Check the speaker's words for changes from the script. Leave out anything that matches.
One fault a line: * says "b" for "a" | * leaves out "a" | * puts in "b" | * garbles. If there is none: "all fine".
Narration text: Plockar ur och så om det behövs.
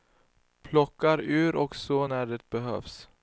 * says "när" for "om"